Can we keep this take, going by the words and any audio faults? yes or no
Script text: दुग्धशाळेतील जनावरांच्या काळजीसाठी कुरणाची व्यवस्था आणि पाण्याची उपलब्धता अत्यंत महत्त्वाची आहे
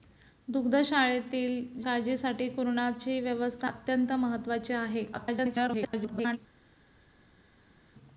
no